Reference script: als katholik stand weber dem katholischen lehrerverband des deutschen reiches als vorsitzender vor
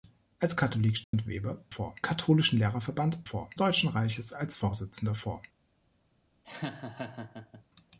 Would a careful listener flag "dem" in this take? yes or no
yes